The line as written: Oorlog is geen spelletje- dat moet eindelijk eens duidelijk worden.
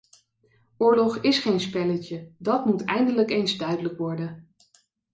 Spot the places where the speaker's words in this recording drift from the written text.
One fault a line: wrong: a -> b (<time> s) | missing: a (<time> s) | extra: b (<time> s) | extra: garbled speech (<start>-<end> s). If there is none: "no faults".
no faults